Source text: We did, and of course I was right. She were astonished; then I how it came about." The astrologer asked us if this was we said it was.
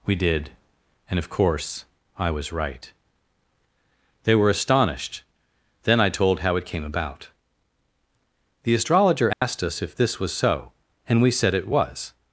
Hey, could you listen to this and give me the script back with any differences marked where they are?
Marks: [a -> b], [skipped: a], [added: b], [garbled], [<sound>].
We did, and of course I was right. [She -> They] were astonished; then I [added: told] how it came about." The astrologer asked [dropout] us if this was [added: so and] we said it was.